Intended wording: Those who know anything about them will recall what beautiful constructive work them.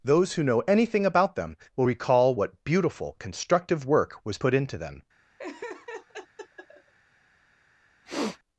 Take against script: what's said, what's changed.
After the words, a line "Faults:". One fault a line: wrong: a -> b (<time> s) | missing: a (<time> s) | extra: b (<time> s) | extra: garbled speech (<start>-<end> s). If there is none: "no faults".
Those who know anything about them will recall what beautiful constructive work was put into them.
Faults:
extra: was put into (4.2 s)